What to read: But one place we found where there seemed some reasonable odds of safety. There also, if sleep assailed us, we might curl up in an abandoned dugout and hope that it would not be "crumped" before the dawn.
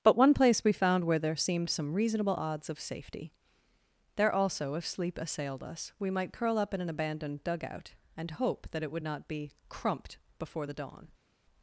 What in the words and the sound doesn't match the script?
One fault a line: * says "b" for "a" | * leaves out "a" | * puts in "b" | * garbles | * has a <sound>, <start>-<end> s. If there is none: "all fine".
all fine